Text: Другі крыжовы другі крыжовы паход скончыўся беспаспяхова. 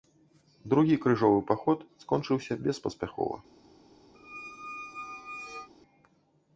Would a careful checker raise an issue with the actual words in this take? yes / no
yes